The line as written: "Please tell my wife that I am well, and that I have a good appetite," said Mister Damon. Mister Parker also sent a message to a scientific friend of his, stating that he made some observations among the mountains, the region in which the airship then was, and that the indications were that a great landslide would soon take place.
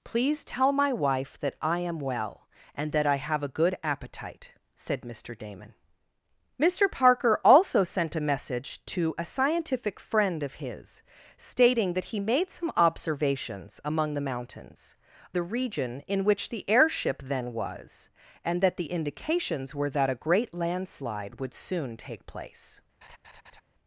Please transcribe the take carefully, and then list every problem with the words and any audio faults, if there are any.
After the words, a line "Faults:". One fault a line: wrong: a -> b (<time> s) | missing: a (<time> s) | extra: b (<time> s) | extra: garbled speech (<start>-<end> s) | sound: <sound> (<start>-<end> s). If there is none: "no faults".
"Please tell my wife that I am well, and that I have a good appetite," said Mister Damon. Mister Parker also sent a message to a scientific friend of his, stating that he made some observations among the mountains, the region in which the airship then was, and that the indications were that a great landslide would soon take place.
Faults:
sound: laugh (23.0-23.6 s)